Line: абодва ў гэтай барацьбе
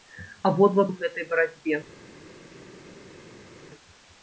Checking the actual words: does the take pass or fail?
pass